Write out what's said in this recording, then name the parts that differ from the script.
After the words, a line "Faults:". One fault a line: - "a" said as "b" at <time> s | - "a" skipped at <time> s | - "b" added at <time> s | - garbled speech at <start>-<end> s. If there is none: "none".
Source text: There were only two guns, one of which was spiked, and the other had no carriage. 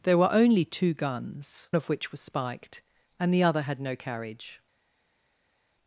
There were only two guns, of which was spiked, and the other had no carriage.
Faults:
- "one" skipped at 1.7 s